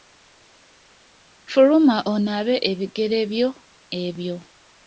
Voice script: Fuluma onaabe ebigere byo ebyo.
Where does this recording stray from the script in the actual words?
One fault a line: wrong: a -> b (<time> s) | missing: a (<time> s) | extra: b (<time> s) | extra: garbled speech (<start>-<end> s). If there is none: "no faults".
no faults